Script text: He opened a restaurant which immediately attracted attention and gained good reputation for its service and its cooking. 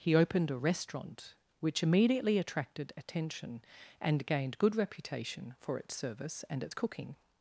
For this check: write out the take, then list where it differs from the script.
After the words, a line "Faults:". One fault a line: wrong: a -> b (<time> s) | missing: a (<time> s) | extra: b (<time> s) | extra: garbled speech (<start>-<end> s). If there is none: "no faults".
He opened a restaurant which immediately attracted attention and gained good reputation for its service and its cooking.
Faults:
no faults